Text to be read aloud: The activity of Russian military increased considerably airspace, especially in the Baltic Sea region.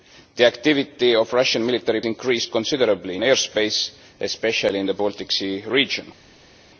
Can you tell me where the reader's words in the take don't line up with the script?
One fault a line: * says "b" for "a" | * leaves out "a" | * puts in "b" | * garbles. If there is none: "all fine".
all fine